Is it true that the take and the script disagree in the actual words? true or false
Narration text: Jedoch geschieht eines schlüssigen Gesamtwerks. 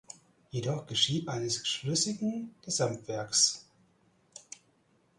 false